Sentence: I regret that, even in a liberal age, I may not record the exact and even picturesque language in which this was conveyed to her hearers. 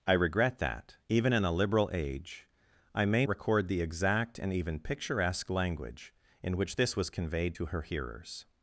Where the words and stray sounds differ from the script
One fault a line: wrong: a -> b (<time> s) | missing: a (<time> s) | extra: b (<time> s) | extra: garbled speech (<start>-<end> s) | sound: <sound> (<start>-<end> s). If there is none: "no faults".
missing: not (3.2 s)